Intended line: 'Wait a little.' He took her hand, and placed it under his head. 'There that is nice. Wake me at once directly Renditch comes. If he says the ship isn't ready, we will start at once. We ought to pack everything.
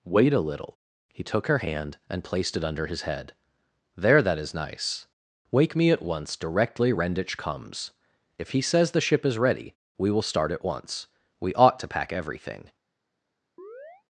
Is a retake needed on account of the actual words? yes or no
yes